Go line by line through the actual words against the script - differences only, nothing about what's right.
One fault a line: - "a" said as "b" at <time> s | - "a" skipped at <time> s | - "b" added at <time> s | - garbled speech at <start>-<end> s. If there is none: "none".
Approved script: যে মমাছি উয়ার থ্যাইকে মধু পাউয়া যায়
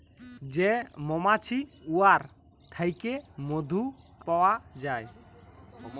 none